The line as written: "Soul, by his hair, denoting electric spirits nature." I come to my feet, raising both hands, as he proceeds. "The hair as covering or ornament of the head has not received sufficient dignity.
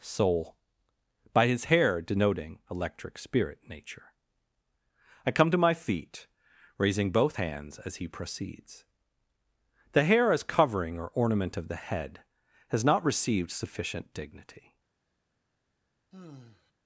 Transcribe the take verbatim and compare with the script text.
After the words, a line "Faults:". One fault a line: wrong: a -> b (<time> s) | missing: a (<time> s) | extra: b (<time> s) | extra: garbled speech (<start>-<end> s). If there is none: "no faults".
"Soul, by his hair, denoting electric spirit nature." I come to my feet, raising both hands, as he proceeds. "The hair as covering or ornament of the head has not received sufficient dignity.
Faults:
wrong: spirits -> spirit (3.2 s)